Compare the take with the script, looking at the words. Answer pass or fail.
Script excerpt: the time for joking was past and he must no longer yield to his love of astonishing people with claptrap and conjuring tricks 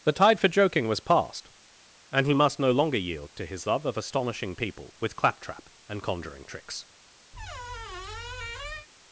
fail